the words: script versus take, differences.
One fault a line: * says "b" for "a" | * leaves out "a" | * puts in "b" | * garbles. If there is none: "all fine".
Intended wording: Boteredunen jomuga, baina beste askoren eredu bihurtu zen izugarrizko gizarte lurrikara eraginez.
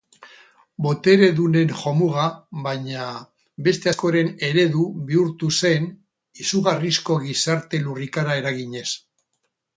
all fine